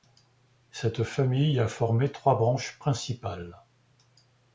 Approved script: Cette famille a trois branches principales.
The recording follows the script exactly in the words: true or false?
false